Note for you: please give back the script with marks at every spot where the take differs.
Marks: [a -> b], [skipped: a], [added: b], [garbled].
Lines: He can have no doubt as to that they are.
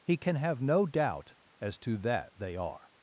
He can have no doubt as to that they are.